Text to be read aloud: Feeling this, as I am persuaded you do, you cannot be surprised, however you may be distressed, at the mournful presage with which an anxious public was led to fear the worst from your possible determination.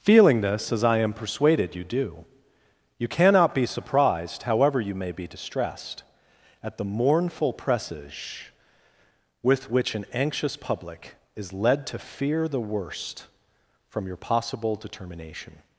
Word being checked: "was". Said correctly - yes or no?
no